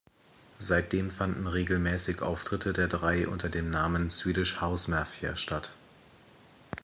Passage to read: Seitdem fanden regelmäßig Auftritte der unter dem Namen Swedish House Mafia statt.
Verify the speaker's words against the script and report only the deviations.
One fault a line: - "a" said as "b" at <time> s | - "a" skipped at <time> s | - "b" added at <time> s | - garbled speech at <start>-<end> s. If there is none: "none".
- "drei" added at 2.9 s